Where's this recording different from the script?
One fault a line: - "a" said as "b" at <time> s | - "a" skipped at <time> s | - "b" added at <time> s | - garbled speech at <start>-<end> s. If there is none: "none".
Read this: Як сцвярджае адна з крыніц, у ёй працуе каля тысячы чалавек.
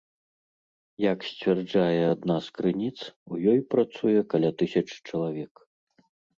none